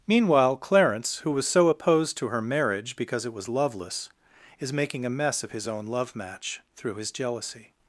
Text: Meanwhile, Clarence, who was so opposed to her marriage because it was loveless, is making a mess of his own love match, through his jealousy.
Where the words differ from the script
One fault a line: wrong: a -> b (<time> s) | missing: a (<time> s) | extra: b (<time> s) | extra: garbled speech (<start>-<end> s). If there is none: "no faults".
no faults